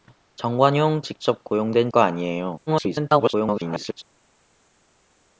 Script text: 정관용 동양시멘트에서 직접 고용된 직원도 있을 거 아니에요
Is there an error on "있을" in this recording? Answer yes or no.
yes